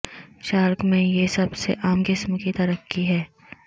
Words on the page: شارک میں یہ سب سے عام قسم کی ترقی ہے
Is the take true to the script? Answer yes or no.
yes